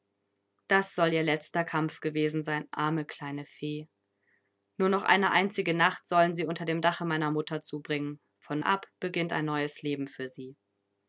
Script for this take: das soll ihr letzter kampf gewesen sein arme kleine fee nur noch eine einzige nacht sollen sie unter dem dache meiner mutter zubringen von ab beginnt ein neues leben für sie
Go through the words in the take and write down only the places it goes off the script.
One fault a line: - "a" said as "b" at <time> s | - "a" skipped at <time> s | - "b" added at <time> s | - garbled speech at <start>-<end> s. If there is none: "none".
none